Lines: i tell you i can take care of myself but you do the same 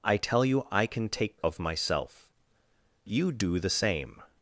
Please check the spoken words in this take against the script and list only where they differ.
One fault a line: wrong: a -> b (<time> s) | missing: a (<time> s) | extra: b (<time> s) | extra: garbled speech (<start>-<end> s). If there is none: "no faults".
missing: care (1.4 s)
missing: but (2.3 s)